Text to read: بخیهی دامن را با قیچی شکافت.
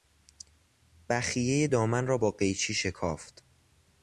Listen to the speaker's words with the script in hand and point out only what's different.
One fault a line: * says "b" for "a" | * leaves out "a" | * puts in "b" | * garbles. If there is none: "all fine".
all fine